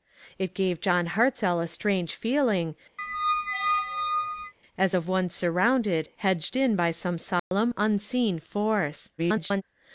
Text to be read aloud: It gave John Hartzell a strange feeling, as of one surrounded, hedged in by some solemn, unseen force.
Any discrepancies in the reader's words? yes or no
yes